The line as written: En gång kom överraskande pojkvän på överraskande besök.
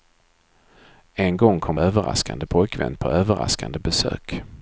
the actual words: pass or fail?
pass